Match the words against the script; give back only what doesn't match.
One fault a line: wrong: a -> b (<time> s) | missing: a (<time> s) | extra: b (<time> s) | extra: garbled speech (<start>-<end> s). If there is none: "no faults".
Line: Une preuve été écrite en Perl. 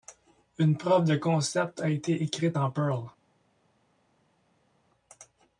extra: de concept a (1.0 s)